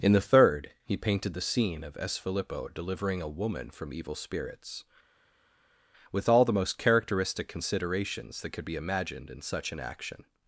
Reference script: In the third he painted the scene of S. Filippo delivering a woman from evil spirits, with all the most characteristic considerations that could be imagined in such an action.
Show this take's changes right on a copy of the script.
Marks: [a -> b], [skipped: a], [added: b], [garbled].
In the third he painted the scene of S. Filippo delivering a woman from evil spirits, with all the most characteristic considerations that could be imagined in such an action.